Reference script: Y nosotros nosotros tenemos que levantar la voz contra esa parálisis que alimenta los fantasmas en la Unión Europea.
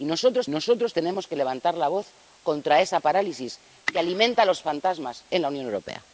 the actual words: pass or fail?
pass